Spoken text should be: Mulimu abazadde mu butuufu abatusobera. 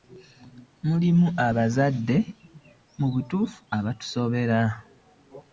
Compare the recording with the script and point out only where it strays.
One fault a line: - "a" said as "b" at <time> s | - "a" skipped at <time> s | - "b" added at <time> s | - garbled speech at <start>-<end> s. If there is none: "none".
none